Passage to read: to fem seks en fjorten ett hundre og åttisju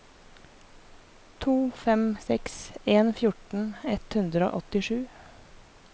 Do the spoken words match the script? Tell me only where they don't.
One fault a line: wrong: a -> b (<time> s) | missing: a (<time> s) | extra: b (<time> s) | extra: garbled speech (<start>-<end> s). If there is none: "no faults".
no faults